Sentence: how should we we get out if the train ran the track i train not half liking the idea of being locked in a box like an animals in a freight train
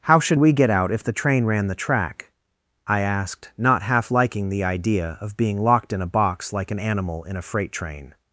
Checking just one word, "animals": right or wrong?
wrong